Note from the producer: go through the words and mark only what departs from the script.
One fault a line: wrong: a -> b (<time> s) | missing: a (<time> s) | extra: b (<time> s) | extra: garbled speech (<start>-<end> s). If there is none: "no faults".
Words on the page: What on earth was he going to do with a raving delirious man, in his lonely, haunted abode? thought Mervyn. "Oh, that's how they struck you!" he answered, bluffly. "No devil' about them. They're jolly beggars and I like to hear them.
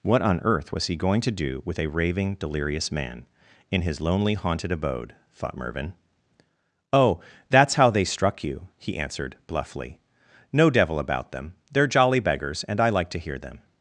no faults